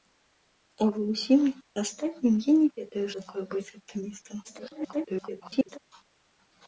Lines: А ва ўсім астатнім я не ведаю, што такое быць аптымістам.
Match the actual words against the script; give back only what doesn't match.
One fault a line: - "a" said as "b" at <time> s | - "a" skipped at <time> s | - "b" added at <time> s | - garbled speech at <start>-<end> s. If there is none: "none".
- "што" skipped at 3.0 s
- garbled speech at 4.4-5.8 s